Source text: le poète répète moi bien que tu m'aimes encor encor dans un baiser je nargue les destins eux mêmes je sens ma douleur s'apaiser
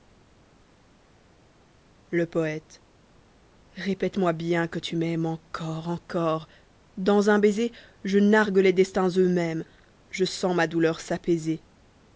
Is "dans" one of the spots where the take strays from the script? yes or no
no